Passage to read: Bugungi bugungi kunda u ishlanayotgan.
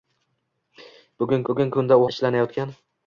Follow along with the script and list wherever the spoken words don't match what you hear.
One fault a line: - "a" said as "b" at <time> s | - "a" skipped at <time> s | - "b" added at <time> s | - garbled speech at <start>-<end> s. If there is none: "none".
none